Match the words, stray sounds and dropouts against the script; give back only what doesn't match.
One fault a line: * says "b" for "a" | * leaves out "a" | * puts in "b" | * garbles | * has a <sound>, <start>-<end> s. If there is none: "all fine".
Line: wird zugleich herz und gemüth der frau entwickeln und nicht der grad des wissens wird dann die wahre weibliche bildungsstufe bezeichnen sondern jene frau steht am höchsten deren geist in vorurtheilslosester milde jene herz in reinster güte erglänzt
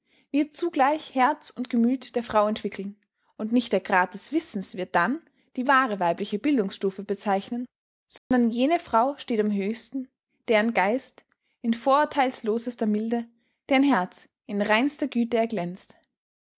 * has a dropout, 8.2-8.3 s
* says "deren" for "jene"